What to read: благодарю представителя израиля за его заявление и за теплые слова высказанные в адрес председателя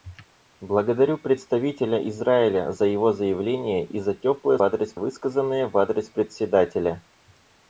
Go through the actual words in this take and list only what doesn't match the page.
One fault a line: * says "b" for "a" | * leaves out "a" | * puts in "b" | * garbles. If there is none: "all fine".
* says "адрес" for "слова"